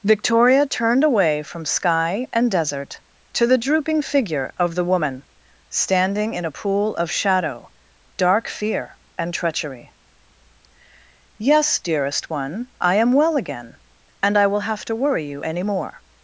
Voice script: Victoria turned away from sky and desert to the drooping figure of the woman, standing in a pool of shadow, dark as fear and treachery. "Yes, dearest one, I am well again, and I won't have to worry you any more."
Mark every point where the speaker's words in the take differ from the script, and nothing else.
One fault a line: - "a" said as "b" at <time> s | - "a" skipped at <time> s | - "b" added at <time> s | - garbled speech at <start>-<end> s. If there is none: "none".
- "as" skipped at 8.5 s
- "won't" said as "will" at 14.4 s